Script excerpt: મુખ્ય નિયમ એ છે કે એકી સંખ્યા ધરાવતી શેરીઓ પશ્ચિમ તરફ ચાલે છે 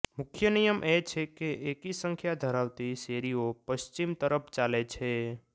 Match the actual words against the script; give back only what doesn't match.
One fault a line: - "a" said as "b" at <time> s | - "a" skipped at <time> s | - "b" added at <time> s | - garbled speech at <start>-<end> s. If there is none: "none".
none